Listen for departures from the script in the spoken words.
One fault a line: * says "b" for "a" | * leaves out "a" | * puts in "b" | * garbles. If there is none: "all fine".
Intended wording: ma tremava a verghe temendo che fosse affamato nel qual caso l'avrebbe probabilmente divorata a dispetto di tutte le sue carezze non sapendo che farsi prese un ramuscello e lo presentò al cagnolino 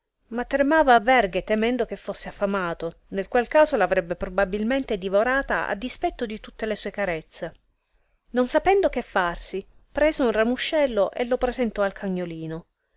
all fine